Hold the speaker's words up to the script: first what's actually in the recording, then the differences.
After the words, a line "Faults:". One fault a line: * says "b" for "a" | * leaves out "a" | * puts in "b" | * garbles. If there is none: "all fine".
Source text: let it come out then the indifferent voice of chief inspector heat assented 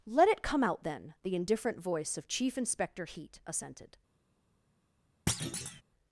let it come out then the indifferent voice of chief inspector heat assented
Faults:
all fine